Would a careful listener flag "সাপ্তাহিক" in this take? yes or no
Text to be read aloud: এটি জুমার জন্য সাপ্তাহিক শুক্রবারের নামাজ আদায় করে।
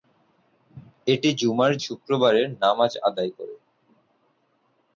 yes